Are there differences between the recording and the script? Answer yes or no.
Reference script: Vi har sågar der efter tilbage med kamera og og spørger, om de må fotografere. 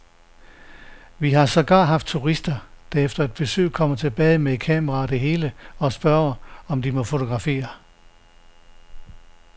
yes